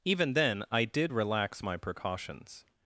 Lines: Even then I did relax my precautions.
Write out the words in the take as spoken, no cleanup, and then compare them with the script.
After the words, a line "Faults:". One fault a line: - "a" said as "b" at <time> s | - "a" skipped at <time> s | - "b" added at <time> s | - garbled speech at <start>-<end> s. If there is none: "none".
Even then I did relax my precautions.
Faults:
none